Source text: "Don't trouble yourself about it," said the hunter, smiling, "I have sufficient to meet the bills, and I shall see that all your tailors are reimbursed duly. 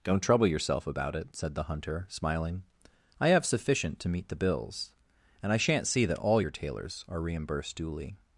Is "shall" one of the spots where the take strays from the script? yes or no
yes